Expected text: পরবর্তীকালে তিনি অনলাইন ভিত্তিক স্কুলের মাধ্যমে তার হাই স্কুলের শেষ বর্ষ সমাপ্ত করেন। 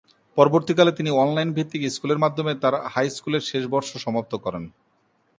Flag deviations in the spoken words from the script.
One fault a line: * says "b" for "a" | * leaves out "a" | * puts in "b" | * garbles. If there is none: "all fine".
all fine